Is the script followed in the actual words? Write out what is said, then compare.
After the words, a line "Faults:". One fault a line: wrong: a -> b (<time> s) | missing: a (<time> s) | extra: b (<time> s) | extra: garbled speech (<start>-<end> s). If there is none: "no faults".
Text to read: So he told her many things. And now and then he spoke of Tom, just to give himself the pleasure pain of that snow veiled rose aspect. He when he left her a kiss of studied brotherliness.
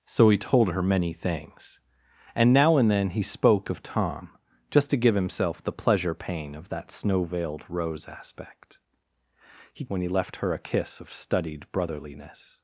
So he told her many things. And now and then he spoke of Tom, just to give himself the pleasure pain of that snow veiled rose aspect. He when he left her a kiss of studied brotherliness.
Faults:
no faults